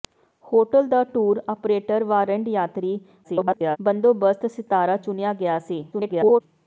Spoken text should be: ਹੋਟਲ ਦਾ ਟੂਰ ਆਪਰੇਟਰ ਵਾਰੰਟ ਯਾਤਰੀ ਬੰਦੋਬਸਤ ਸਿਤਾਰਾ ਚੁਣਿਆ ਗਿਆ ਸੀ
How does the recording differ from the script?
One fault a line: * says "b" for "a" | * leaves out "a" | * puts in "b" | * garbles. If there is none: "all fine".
* garbles
* garbles